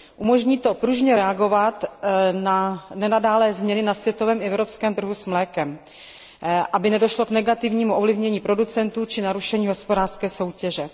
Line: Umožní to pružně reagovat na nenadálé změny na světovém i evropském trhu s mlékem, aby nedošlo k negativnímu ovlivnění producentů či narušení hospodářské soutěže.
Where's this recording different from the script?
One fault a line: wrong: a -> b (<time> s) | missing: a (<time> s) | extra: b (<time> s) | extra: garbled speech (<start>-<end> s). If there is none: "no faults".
no faults